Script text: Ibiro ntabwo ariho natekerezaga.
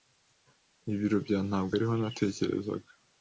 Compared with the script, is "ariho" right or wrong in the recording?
right